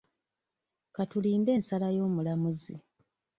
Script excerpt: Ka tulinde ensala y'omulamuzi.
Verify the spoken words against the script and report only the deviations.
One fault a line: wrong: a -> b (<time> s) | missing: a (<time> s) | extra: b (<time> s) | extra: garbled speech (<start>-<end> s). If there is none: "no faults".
no faults